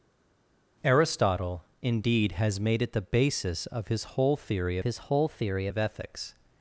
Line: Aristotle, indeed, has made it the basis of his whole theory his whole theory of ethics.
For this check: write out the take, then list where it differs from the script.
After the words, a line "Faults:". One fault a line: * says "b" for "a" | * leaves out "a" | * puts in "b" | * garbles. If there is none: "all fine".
Aristotle, indeed, has made it the basis of his whole theory his whole theory of ethics.
Faults:
all fine